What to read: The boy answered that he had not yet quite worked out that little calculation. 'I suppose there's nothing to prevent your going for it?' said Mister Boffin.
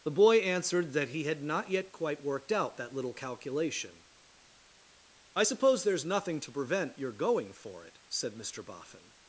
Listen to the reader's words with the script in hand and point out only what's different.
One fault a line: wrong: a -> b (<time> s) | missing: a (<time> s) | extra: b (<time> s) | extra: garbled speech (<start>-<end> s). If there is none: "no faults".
no faults